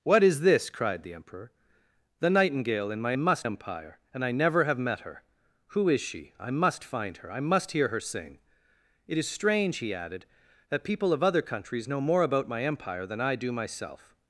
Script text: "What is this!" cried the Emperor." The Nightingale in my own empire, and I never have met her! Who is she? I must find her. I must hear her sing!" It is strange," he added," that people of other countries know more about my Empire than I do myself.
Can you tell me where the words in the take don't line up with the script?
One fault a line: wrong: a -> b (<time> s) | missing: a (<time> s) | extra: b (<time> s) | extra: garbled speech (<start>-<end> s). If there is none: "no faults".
wrong: own -> must (3.2 s)